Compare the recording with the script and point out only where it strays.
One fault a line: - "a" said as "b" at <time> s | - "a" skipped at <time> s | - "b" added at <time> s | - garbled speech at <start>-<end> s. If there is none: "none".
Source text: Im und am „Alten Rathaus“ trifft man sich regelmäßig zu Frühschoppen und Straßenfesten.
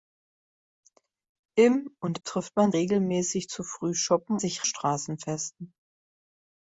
- "am Alten Rathaus" skipped at 2.2 s
- "sich" skipped at 2.7 s
- "und" said as "sich" at 4.4 s